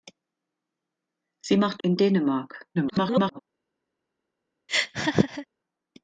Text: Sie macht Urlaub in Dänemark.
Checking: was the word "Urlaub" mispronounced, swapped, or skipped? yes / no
yes